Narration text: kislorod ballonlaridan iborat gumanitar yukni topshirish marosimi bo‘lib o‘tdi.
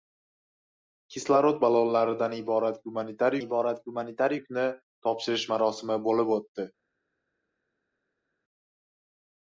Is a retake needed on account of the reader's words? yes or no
yes